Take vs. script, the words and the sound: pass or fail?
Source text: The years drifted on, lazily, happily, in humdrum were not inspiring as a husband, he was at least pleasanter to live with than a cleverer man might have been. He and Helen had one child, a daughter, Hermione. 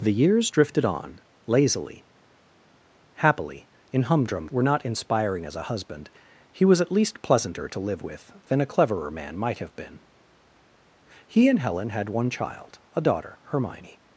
pass